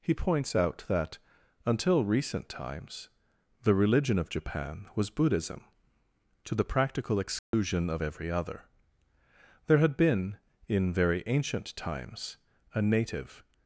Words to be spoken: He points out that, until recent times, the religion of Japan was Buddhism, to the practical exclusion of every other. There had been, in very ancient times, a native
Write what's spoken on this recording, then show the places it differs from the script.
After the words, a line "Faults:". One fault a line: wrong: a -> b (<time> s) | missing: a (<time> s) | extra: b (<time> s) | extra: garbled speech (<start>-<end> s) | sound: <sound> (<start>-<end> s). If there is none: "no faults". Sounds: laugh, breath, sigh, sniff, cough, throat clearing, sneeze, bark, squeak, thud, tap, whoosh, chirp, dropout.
He points out that, until recent times, the religion of Japan was Buddhism, to the practical exclusion of every other. There had been, in very ancient times, a native
Faults:
sound: dropout (7.4-7.5 s)